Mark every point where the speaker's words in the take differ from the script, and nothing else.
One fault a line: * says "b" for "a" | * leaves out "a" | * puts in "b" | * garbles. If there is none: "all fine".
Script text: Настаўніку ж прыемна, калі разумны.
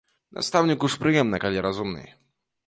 all fine